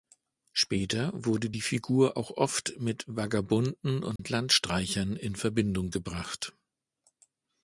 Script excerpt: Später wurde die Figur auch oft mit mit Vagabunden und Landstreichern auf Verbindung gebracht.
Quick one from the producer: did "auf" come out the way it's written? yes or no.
no